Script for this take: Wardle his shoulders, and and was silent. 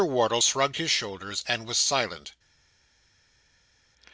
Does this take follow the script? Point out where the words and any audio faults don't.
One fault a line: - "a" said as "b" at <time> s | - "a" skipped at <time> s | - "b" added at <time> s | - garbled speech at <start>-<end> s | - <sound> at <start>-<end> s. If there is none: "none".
- "shrugged" added at 0.4 s
- "and" skipped at 1.7 s